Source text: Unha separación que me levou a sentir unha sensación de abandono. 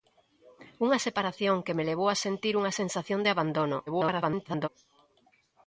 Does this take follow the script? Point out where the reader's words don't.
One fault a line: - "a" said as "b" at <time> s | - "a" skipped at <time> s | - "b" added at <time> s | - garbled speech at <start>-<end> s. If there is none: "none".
- garbled speech at 3.9-4.7 s